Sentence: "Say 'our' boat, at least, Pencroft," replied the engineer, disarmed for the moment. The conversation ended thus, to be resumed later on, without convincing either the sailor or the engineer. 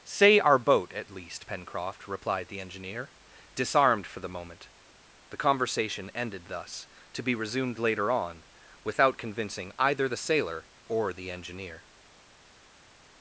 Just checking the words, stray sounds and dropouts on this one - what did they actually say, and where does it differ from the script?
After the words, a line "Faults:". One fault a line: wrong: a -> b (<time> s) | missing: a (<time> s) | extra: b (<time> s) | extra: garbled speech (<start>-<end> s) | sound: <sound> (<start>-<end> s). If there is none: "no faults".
"Say 'our' boat, at least, Pencroft," replied the engineer, disarmed for the moment. The conversation ended thus, to be resumed later on, without convincing either the sailor or the engineer.
Faults:
no faults